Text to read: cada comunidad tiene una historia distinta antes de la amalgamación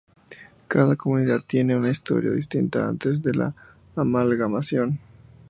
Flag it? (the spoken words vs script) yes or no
no